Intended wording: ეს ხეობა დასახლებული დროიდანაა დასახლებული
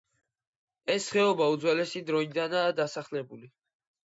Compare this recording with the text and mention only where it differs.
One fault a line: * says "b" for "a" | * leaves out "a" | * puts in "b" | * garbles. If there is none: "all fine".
* says "უძველესი" for "დასახლებული"